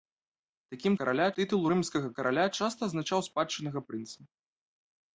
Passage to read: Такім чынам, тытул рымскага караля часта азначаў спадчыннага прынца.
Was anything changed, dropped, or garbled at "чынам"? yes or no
yes